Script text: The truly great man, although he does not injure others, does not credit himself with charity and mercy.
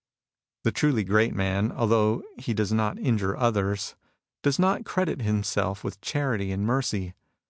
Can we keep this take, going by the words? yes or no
yes